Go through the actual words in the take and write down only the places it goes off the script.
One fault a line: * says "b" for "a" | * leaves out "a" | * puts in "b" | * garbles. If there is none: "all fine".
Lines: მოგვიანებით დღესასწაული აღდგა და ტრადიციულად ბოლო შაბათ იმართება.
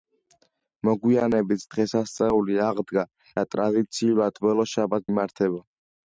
all fine